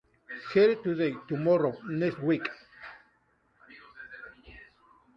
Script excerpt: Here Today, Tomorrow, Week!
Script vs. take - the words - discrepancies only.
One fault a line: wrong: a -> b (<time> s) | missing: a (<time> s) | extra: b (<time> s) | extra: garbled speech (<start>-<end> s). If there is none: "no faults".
extra: Next (1.8 s)